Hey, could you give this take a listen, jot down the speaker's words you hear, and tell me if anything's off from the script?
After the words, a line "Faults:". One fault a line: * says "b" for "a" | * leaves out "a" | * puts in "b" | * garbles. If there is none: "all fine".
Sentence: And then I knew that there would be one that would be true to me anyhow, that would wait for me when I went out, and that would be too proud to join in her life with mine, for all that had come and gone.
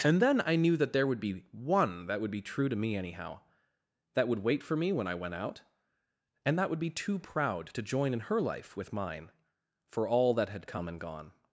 And then I knew that there would be one that would be true to me anyhow, that would wait for me when I went out, and that would be too proud to join in her life with mine, for all that had come and gone.
Faults:
all fine